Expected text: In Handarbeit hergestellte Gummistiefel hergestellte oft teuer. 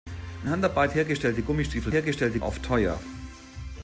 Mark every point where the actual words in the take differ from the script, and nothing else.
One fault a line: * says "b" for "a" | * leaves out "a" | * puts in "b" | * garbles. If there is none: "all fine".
all fine